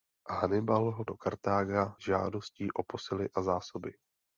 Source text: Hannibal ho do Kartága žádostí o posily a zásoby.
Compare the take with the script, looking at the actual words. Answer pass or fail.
pass